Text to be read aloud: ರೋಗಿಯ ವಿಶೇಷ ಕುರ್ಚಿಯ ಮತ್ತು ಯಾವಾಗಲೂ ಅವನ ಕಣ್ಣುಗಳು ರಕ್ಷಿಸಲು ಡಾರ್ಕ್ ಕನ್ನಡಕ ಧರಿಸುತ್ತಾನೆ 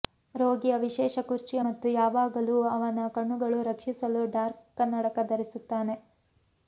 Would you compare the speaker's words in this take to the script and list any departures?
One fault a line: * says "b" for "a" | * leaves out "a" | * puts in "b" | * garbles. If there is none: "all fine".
all fine